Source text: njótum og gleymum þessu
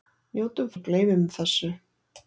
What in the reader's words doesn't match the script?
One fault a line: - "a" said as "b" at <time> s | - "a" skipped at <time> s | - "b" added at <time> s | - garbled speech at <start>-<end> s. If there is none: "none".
none